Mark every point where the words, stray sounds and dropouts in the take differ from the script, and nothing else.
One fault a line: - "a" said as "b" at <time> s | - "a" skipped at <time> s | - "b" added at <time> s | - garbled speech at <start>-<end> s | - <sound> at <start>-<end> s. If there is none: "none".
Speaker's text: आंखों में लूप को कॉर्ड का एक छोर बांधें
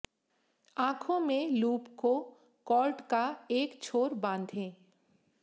none